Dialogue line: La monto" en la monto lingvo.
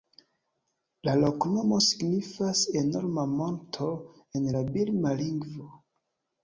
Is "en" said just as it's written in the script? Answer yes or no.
yes